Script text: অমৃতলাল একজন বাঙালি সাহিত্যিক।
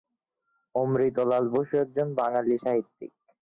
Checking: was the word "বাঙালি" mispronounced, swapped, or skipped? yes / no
no